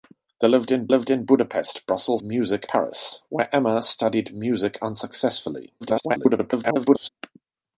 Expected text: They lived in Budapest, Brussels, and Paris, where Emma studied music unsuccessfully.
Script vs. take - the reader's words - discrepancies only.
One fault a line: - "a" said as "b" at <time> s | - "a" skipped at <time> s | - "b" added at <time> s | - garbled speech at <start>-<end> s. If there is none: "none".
- "lived in" added at 0.9 s
- "and" said as "music" at 2.2 s
- garbled speech at 5.8-7.1 s